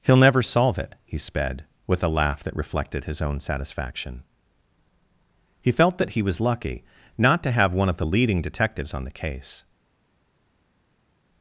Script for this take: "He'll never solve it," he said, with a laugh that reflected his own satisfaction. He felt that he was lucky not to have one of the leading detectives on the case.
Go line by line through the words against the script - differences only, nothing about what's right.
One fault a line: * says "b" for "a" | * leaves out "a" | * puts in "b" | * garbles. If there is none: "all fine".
* says "sped" for "said"